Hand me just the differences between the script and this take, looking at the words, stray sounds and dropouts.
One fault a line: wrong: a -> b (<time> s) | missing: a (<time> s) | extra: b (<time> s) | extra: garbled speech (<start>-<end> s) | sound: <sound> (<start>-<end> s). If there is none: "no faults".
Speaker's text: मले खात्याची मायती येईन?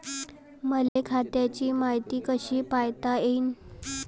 sound: dropout (0.9-1.0 s)
extra: कशी पायता (2.3 s)